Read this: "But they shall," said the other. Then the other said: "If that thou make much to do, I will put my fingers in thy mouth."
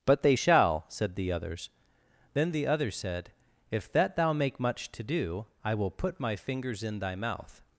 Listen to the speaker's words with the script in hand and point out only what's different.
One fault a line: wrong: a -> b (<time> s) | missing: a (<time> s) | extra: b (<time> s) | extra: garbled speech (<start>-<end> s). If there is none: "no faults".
wrong: other -> others (1.3 s)